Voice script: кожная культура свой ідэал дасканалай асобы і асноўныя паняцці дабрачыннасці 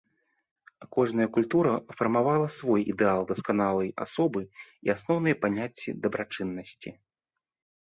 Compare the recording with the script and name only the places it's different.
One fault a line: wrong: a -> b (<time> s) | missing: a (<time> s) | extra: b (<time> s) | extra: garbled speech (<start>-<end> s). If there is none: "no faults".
extra: фармавала (2.0 s)